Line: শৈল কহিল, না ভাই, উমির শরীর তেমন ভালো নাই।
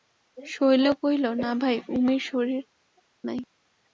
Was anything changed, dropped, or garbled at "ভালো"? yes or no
yes